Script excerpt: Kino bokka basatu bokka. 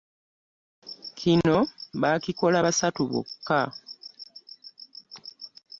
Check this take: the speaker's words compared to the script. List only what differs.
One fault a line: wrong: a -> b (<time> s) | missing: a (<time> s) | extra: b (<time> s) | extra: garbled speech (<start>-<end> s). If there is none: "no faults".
wrong: bokka -> baakikola (2.0 s)